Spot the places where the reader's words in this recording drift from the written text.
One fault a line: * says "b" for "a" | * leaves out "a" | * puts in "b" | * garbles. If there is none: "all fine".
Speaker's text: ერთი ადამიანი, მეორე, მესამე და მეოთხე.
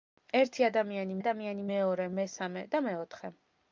* puts in "ადამიანი"